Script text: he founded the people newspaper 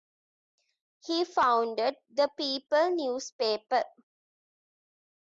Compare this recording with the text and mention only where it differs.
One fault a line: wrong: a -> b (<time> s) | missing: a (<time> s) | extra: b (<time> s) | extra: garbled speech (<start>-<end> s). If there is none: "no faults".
no faults